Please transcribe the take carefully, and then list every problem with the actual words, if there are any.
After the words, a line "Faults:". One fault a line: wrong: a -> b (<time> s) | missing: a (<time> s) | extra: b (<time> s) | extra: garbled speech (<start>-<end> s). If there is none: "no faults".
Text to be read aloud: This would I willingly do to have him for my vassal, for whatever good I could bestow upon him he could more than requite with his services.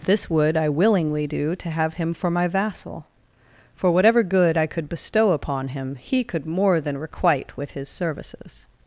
This would I willingly do to have him for my vassal, for whatever good I could bestow upon him he could more than requite with his services.
Faults:
no faults